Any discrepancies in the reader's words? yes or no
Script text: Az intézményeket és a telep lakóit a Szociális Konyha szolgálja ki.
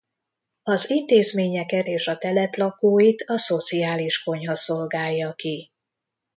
no